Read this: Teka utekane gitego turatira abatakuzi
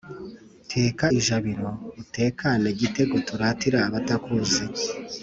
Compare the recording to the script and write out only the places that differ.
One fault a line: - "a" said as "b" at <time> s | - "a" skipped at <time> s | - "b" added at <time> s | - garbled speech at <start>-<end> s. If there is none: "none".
- "ijabiro" added at 1.2 s